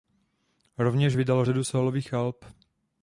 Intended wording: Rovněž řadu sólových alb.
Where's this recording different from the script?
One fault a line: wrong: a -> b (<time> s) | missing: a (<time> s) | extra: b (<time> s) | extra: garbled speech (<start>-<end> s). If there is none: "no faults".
extra: vydal (1.1 s)